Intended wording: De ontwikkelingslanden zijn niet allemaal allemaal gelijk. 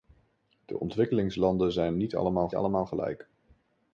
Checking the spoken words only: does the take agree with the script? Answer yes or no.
yes